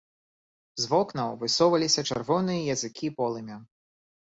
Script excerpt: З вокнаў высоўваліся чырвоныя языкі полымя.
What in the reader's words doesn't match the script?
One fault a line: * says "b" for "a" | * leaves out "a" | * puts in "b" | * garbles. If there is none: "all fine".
all fine